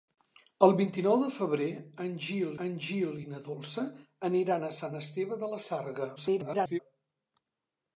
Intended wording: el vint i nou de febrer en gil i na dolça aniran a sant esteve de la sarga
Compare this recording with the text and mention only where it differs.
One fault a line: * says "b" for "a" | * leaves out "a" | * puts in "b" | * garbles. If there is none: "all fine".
* puts in "en gil"
* garbles